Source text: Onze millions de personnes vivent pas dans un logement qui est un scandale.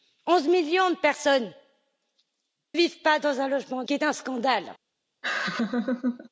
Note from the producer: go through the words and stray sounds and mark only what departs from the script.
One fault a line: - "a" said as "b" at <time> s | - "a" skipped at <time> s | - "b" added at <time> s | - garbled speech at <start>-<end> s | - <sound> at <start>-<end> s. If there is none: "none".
- laugh at 5.2-6.3 s